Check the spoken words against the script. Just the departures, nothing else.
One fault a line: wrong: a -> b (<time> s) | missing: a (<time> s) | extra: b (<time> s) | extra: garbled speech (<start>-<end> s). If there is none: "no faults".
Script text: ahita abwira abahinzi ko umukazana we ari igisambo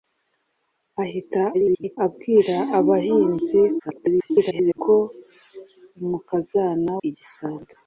extra: garbled speech (1.5-2.0 s)
extra: garbled speech (3.8-4.8 s)
missing: we ari (6.9 s)